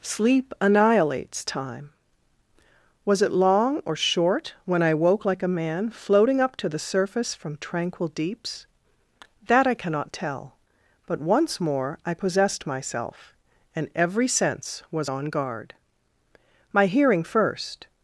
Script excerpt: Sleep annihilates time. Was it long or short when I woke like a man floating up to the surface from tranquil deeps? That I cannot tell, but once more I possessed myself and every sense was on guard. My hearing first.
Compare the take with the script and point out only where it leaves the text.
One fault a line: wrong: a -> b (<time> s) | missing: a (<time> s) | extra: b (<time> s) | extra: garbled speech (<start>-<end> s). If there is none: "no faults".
no faults